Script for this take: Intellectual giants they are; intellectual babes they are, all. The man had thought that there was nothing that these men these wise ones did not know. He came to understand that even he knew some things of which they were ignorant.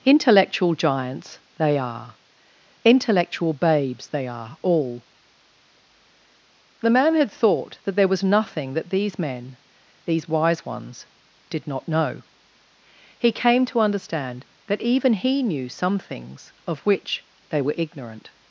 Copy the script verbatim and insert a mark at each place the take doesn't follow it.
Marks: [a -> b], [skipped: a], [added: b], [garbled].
Intellectual giants they are; intellectual babes they are, all. The man had thought that there was nothing that these men these wise ones did not know. He came to understand that even he knew some things of which they were ignorant.